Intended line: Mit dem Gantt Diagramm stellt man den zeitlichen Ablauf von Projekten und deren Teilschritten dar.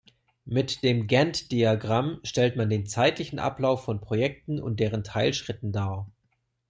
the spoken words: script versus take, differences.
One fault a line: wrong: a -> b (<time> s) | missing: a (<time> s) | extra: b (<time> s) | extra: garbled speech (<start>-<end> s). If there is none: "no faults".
no faults